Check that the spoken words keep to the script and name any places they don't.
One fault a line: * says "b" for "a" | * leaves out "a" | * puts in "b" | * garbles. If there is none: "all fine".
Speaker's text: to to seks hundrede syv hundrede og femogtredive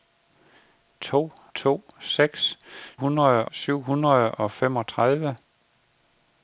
all fine